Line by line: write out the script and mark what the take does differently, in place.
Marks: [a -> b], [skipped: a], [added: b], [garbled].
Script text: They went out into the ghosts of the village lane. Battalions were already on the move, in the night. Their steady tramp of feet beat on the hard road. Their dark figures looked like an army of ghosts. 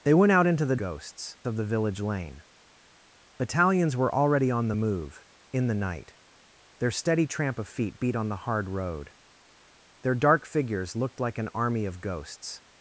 They went out into the ghosts of the village lane. Battalions were already on the move, in the night. Their steady tramp of feet beat on the hard road. Their dark figures looked like an army of ghosts.